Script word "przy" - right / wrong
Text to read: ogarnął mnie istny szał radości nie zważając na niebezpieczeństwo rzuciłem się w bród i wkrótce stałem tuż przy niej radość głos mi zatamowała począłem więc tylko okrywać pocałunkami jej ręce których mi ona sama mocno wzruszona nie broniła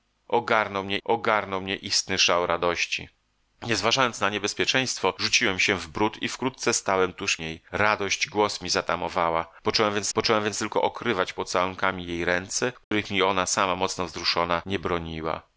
wrong